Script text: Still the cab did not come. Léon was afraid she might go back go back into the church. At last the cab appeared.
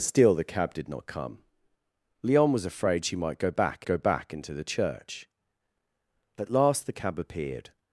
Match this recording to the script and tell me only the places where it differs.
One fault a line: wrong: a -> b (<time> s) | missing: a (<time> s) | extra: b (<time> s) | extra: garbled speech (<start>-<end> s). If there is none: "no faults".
no faults